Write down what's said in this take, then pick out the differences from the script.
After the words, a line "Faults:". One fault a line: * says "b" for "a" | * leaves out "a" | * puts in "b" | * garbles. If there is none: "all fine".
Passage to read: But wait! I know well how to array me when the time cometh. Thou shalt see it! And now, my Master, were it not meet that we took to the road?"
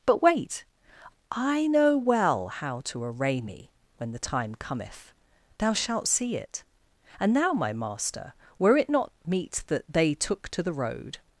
But wait! I know well how to array me when the time cometh. Thou shalt see it! And now, my Master, were it not meet that they took to the road?"
Faults:
* says "they" for "we"